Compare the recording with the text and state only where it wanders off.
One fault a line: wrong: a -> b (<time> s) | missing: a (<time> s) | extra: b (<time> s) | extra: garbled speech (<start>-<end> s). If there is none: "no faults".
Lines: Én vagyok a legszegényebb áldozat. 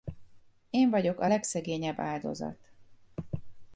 no faults